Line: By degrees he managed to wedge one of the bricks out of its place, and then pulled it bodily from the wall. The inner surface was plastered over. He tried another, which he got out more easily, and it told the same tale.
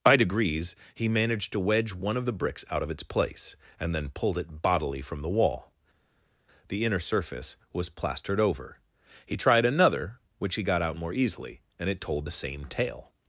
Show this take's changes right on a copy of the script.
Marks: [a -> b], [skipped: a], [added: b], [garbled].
By degrees he managed to wedge one of the bricks out of its place, and then pulled it bodily from the wall. The inner surface was plastered over. He tried another, which he got out more easily, and it told the same tale.